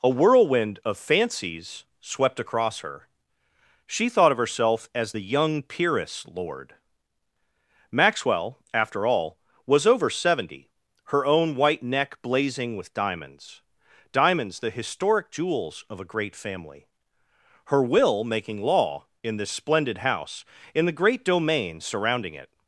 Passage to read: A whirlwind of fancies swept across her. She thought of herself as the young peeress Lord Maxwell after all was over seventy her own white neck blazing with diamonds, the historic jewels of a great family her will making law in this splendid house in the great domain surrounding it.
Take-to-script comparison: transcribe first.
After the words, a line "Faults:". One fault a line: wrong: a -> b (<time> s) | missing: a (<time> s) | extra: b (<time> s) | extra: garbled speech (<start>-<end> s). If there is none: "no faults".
A whirlwind of fancies swept across her. She thought of herself as the young peeress Lord Maxwell after all was over seventy her own white neck blazing with diamonds diamonds, the historic jewels of a great family her will making law in this splendid house in the great domain surrounding it.
Faults:
extra: diamonds (14.1 s)